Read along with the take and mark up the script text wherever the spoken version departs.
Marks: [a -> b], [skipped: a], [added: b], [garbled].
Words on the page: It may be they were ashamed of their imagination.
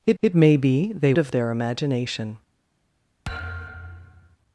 It [added: it] may be they [skipped: were ashamed] of their imagination.